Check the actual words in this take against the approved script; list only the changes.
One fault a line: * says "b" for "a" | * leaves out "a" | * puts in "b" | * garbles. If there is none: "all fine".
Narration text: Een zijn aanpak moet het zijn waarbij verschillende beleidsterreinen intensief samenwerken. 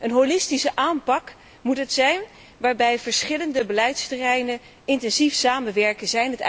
* says "holistische" for "zijn"